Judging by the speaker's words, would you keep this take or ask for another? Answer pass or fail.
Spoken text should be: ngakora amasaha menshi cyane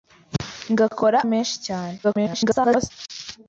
fail